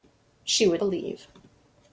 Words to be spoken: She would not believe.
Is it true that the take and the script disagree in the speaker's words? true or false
true